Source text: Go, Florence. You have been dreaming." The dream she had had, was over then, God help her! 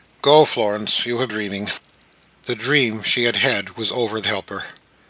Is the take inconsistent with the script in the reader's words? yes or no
yes